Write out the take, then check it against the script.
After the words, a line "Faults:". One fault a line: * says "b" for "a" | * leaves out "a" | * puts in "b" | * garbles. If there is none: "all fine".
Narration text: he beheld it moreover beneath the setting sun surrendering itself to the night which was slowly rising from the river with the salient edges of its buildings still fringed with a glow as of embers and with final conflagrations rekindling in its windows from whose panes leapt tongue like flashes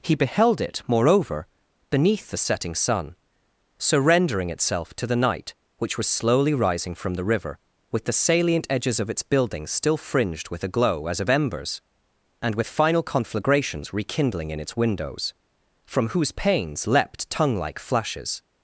he beheld it moreover beneath the setting sun surrendering itself to the night which was slowly rising from the river with the salient edges of its buildings still fringed with a glow as of embers and with final conflagrations rekindling in its windows from whose panes leapt tongue like flashes
Faults:
all fine